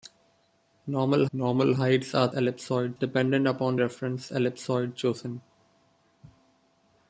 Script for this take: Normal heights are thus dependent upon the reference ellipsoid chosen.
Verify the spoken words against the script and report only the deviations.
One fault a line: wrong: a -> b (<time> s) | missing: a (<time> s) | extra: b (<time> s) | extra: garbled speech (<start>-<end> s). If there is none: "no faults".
extra: normal (1.3 s)
wrong: thus -> ellipsoid (2.3 s)
missing: the (3.8 s)